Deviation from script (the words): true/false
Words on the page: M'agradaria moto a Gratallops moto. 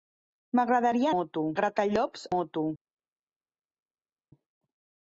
false